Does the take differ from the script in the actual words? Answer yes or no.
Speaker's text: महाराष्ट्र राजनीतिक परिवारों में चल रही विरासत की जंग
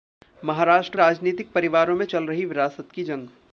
no